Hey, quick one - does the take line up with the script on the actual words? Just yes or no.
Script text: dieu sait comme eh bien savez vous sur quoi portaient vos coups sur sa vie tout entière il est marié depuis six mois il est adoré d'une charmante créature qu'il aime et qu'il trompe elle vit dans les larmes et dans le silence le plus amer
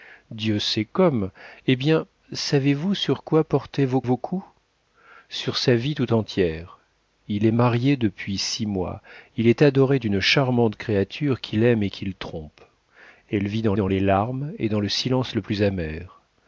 no